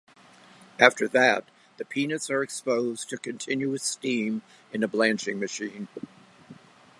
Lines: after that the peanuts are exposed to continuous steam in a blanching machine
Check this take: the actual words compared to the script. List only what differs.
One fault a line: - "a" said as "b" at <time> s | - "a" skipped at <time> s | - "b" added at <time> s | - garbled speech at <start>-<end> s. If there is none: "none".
none